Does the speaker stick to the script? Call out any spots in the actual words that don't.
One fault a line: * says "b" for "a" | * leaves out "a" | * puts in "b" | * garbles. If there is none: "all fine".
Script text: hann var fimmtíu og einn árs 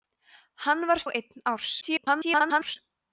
* leaves out "fimmtíu"
* garbles